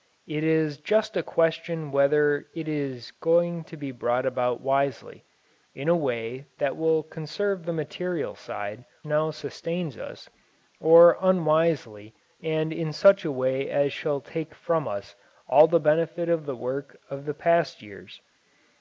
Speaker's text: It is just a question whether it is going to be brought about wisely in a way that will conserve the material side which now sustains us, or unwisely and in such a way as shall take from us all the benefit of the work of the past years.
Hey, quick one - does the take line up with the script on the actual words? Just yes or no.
no